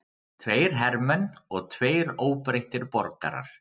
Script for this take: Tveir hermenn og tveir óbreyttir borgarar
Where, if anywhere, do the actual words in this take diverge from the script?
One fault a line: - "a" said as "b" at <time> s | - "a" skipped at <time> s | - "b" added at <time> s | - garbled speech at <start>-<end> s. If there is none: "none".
none